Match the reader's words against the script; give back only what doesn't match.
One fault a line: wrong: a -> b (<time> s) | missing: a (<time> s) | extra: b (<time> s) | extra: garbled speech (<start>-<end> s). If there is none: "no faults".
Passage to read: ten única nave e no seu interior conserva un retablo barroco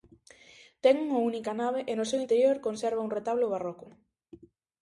extra: unha (1.1 s)